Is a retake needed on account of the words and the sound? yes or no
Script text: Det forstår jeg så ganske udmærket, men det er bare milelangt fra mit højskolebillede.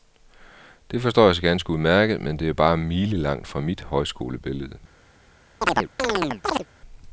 yes